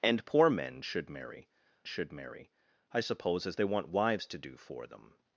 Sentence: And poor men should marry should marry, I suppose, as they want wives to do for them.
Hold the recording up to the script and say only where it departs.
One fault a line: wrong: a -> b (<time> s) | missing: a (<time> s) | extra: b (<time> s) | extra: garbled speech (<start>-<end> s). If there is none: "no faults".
no faults